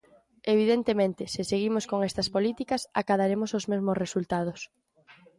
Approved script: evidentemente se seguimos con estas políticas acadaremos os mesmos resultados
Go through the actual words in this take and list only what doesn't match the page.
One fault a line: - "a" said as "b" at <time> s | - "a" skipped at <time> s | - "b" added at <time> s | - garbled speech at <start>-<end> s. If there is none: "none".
none